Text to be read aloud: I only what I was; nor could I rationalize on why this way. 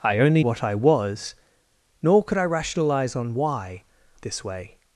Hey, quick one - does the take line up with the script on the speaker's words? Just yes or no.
yes